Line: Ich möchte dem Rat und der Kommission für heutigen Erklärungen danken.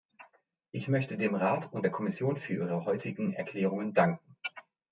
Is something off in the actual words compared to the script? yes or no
yes